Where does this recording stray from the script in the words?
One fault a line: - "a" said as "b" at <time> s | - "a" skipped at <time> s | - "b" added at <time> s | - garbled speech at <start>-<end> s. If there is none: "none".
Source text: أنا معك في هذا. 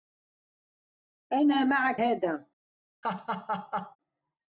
- "في" skipped at 2.0 s